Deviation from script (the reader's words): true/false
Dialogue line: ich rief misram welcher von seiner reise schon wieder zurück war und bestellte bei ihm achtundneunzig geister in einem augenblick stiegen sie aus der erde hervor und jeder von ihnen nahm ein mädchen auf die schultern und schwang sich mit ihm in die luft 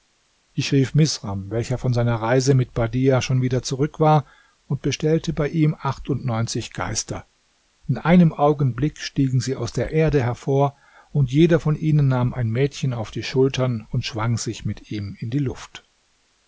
true